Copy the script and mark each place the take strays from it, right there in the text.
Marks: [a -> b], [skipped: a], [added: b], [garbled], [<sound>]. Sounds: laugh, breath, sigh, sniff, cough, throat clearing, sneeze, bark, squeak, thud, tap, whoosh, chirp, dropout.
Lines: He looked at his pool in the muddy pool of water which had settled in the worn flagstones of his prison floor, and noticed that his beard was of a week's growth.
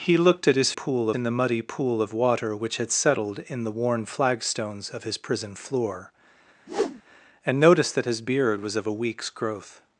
He looked at his pool in the muddy pool of water which had settled in the worn flagstones of his prison floor, [whoosh] and noticed that his beard was of a week's growth.